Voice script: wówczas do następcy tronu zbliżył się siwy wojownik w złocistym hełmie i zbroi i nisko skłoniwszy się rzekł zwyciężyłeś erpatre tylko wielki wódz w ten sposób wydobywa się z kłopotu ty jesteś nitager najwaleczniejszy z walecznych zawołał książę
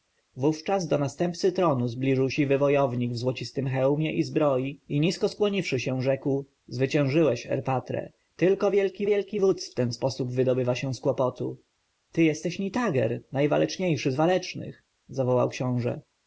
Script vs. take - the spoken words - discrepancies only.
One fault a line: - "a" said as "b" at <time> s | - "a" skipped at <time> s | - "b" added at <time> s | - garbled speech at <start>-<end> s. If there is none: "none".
- "się" skipped at 2.3 s
- "wielki" added at 9.1 s